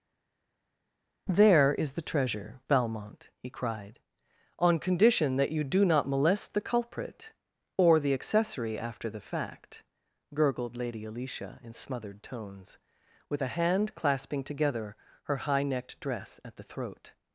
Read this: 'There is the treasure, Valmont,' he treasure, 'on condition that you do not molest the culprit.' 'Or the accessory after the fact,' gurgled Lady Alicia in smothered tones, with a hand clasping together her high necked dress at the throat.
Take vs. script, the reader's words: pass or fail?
fail